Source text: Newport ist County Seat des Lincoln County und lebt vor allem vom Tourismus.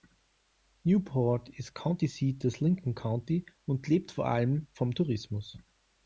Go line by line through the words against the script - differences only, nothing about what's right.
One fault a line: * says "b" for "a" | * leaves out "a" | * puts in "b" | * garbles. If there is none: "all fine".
all fine